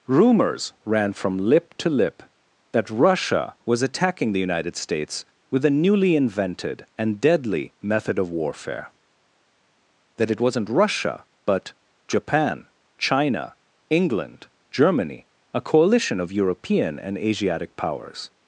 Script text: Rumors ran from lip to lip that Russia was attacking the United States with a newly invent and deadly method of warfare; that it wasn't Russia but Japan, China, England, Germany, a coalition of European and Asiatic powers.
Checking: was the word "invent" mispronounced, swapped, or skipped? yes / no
yes